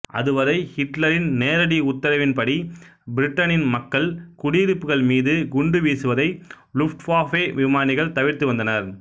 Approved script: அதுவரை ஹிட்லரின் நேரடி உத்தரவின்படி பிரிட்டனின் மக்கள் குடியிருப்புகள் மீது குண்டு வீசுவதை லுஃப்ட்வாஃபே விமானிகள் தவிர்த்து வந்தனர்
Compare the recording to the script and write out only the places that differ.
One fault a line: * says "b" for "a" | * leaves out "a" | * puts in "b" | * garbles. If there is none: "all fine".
all fine